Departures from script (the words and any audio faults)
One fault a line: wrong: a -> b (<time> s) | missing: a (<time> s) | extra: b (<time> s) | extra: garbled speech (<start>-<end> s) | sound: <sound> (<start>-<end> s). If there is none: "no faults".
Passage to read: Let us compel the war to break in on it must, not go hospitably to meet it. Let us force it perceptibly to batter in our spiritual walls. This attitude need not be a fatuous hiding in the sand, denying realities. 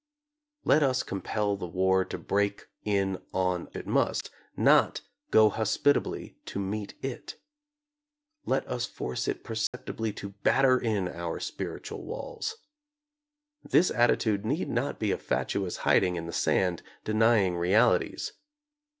sound: dropout (9.7-9.7 s)